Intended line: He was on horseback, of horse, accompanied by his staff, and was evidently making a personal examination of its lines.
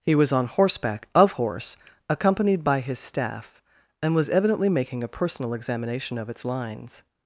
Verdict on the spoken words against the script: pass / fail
pass